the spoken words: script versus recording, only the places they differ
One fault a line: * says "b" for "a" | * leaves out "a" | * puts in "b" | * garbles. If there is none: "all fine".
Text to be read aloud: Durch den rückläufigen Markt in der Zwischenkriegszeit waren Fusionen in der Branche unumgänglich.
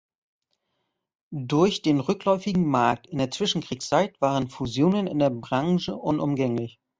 all fine